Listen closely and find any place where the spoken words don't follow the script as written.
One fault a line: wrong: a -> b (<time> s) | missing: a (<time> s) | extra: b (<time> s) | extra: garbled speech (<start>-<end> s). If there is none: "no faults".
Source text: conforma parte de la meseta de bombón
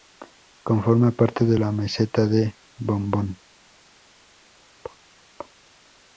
no faults